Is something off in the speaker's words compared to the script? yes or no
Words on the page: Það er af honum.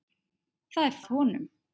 no